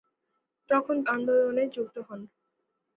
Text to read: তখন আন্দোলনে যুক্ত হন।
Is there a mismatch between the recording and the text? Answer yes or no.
no